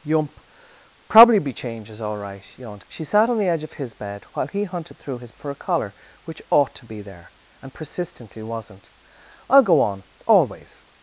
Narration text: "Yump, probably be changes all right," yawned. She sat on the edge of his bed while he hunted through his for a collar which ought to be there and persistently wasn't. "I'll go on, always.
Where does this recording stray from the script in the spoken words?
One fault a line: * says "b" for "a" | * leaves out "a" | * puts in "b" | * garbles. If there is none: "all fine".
all fine